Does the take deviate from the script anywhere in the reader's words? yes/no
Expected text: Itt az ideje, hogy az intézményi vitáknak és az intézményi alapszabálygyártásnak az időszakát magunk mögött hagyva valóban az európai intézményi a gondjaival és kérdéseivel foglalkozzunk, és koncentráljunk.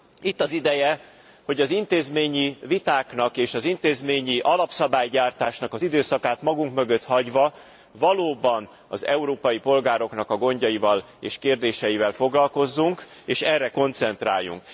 yes